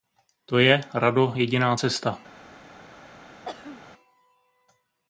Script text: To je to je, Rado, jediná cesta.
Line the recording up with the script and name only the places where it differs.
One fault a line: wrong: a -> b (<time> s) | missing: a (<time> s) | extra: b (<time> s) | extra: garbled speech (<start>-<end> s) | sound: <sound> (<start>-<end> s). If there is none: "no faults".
missing: to je (0.8 s)
sound: throat clearing (3.4-3.8 s)